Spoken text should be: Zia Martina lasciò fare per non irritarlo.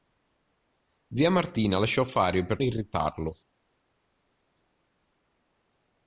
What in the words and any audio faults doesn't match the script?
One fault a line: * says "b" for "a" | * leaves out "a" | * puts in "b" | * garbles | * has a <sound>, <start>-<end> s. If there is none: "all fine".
* leaves out "non"